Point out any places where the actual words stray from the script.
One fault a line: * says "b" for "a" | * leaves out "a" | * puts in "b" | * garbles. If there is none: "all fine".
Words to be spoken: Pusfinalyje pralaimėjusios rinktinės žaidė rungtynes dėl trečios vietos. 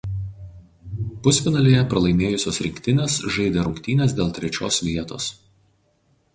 all fine